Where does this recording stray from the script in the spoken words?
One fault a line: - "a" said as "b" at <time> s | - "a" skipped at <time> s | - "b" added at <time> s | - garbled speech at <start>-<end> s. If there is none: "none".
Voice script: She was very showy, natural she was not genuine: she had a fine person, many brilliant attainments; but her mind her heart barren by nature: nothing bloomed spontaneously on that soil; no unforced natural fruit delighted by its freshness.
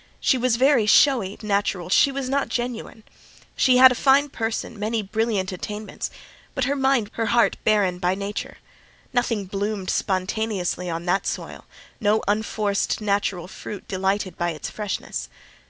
none